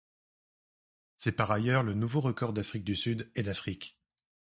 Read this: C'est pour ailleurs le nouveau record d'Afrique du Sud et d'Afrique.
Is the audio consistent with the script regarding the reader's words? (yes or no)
no